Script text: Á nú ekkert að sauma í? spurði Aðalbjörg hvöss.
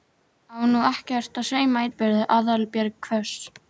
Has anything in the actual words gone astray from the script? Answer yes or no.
no